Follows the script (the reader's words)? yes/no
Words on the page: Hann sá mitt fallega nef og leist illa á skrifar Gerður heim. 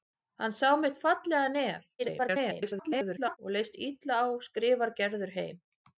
no